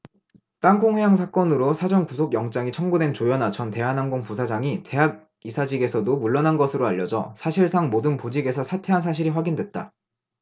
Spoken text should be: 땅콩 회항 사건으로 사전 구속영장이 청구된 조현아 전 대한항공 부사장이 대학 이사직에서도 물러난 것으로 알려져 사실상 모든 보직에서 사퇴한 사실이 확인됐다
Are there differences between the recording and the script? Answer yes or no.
no